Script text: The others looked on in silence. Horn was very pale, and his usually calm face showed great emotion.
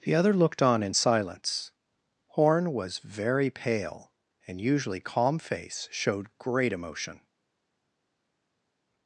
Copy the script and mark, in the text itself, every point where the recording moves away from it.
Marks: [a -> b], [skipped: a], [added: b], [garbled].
The [others -> other] looked on in silence. Horn was very pale, and [skipped: his] usually calm face showed great emotion.